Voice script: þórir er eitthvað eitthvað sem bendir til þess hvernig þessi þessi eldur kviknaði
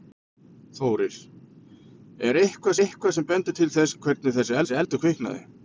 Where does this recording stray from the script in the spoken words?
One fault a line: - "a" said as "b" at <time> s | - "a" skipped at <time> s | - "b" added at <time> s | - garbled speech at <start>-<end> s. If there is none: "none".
none